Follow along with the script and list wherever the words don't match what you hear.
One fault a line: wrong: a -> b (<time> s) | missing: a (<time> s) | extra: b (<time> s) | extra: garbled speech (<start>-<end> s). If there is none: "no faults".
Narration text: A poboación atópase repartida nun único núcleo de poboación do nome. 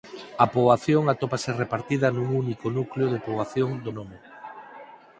no faults